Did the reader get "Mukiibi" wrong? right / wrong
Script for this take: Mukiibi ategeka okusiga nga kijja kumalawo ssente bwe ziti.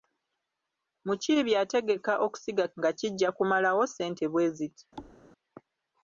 right